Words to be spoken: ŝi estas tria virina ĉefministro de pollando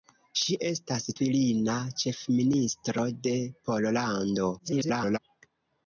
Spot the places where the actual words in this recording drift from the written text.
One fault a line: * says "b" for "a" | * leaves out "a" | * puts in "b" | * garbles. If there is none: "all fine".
* leaves out "tria"
* garbles